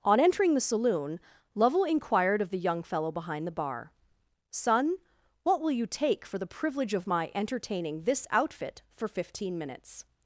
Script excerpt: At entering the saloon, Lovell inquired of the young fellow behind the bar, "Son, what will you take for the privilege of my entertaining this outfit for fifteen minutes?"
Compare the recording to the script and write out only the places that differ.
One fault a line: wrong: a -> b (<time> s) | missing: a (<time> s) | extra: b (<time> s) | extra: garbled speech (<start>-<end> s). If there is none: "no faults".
wrong: At -> On (0.0 s)